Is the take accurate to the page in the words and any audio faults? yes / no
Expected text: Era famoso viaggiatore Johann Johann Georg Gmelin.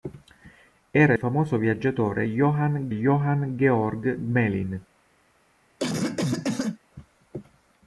no